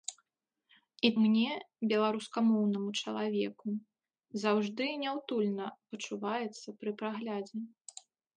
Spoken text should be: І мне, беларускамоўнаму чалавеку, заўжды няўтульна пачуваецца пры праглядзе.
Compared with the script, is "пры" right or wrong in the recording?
right